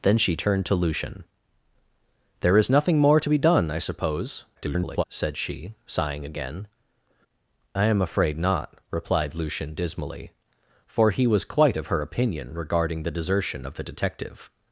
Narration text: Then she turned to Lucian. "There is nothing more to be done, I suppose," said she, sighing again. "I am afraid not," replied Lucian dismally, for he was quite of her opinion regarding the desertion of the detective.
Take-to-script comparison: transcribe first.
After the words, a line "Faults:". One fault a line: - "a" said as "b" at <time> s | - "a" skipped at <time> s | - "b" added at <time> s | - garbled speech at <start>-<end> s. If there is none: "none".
Then she turned to Lucian. "There is nothing more to be done, I suppose," [garbled] said she, sighing again. "I am afraid not," replied Lucian dismally, for he was quite of her opinion regarding the desertion of the detective.
Faults:
- garbled speech at 4.5-5.0 s